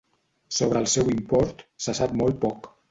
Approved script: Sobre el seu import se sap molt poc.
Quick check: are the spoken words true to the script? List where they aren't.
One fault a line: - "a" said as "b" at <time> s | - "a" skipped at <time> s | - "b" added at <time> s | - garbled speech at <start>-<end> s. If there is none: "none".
none